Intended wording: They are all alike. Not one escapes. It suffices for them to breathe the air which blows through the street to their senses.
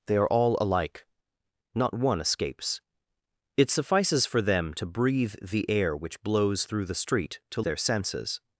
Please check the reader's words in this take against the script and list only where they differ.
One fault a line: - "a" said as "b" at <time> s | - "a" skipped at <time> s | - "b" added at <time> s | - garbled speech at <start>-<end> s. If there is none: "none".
none